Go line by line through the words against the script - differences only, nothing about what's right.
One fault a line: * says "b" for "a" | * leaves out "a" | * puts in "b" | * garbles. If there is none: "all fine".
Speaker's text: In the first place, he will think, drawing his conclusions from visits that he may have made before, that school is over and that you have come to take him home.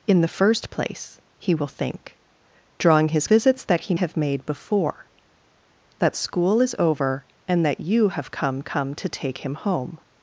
* leaves out "conclusions from"
* leaves out "may"
* puts in "come"